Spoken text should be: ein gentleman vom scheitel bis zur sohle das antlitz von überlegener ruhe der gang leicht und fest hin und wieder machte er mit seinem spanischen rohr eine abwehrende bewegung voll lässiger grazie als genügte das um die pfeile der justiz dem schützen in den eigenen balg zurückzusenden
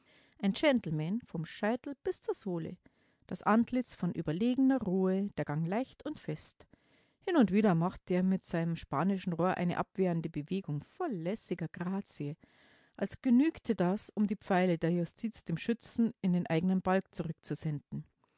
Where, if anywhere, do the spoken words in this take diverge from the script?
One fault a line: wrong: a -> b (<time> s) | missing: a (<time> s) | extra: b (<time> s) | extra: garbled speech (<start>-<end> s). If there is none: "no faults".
no faults